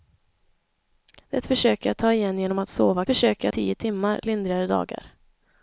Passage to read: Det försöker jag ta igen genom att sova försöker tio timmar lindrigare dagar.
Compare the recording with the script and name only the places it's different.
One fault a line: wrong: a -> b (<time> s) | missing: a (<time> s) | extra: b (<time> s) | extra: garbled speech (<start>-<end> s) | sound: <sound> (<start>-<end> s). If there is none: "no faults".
no faults